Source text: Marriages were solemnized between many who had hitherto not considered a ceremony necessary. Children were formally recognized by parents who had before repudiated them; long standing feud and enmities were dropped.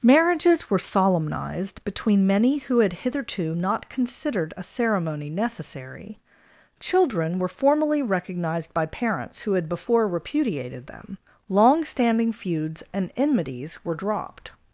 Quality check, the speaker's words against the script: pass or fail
fail